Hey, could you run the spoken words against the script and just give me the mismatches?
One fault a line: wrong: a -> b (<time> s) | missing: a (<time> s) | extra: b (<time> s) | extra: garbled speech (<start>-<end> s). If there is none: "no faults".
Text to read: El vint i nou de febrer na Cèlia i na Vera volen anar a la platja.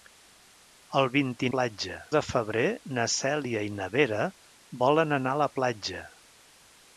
wrong: nou -> platja (1.5 s)